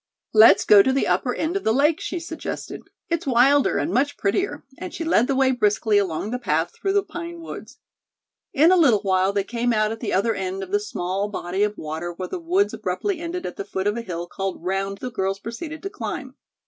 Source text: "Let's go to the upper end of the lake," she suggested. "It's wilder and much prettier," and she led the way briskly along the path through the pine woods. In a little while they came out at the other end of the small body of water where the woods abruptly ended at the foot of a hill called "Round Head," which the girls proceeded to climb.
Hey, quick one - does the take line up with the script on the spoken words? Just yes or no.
no